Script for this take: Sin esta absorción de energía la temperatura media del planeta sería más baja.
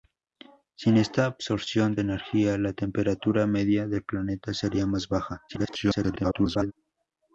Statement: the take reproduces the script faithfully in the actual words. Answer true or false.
false